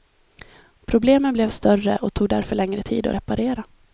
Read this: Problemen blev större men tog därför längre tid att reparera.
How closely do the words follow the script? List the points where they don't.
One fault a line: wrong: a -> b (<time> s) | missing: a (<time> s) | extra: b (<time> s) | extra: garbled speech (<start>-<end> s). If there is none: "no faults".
wrong: men -> och (2.0 s)